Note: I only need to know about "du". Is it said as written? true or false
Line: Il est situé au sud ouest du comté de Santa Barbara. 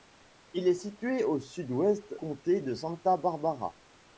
false